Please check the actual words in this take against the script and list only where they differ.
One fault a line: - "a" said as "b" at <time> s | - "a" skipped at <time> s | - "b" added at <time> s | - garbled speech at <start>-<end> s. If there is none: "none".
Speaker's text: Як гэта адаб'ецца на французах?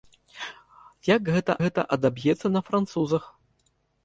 - "гэта" added at 1.6 s